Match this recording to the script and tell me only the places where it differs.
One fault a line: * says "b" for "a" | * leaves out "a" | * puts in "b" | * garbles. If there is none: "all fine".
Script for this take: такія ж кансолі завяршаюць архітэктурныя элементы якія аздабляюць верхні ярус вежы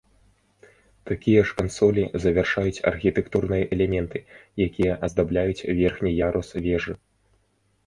all fine